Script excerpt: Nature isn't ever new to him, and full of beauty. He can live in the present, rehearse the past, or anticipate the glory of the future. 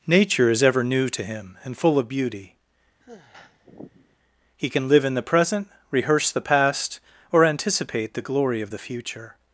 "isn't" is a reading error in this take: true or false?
true